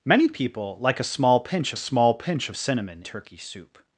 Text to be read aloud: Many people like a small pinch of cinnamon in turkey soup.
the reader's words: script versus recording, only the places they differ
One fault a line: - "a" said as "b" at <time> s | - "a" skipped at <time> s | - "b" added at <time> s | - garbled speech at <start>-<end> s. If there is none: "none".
- "small pinch" added at 1.8 s
- "in" skipped at 3.0 s